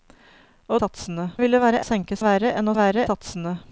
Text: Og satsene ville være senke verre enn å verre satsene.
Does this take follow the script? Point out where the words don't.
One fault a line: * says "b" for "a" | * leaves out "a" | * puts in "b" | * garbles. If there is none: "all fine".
all fine